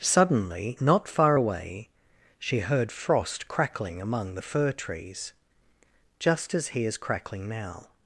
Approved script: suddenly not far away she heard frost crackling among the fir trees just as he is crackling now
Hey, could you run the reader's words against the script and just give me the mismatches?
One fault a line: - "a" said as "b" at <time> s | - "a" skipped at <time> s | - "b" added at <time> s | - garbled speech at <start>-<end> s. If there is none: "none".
none